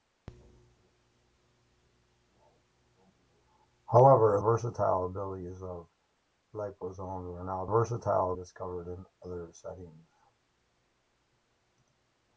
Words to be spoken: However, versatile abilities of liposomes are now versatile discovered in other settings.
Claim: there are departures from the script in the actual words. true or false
false